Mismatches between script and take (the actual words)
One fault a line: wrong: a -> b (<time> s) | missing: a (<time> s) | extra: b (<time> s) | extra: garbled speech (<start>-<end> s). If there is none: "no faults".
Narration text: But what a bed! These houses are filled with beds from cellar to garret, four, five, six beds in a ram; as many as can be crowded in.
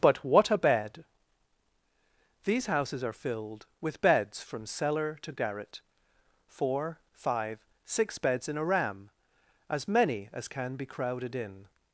no faults